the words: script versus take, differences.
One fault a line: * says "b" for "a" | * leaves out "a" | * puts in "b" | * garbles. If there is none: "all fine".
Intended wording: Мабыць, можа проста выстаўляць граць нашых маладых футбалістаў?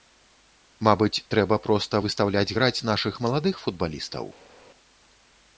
* says "трэба" for "можа"